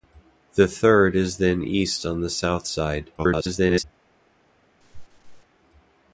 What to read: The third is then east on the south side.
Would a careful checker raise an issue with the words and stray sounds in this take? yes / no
yes